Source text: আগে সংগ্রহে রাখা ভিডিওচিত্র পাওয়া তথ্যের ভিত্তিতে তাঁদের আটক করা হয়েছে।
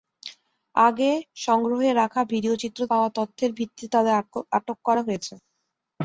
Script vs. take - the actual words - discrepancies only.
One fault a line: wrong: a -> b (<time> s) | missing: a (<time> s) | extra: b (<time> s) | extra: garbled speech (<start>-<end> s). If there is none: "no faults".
no faults